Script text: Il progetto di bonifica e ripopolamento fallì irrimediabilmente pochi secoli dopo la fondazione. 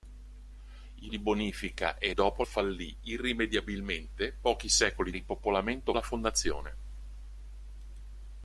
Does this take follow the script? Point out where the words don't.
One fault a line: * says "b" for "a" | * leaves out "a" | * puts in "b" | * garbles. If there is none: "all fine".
* leaves out "progetto"
* says "dopo" for "ripopolamento"
* says "ripopolamento" for "dopo"